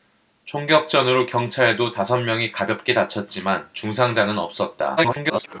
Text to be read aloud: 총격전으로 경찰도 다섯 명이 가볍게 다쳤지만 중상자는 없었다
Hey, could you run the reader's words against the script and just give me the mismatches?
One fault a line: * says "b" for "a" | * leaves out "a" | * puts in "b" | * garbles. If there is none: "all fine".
* garbles